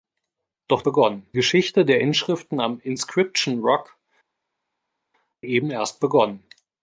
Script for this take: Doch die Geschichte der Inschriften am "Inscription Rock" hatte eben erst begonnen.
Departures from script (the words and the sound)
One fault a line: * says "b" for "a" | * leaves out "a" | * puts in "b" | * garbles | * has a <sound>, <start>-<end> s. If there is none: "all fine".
* says "begonnen" for "die"
* leaves out "hatte"